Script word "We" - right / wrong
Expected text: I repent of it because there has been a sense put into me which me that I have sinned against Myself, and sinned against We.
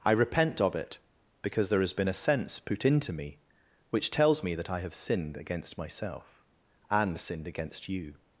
wrong